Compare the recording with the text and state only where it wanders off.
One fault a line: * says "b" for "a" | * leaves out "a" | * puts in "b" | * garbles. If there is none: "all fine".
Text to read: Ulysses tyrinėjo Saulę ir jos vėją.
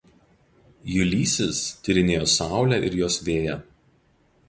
all fine